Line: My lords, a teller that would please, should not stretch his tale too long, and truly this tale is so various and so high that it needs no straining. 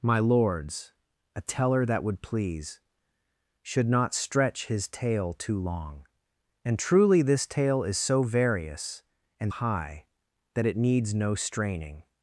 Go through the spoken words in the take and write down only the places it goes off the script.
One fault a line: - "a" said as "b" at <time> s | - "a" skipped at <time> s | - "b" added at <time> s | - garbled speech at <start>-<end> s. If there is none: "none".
- "so" skipped at 9.5 s